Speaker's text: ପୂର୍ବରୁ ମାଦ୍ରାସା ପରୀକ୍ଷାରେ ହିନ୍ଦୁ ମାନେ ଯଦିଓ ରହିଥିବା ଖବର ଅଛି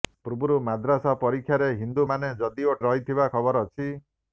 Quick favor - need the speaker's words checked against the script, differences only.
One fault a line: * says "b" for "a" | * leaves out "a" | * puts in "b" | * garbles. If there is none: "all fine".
all fine